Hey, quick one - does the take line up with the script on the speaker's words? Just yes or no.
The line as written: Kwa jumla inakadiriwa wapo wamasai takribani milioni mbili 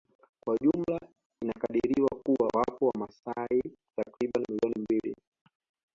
no